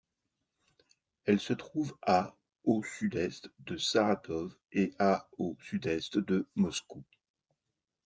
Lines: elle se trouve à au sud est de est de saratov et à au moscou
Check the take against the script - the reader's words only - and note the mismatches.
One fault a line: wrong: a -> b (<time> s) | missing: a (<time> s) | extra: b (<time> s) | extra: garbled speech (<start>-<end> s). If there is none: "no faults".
missing: est de (3.8 s)
extra: sud est de (5.6 s)